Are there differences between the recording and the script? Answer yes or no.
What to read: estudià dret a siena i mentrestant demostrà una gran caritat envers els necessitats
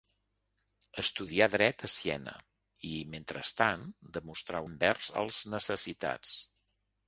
yes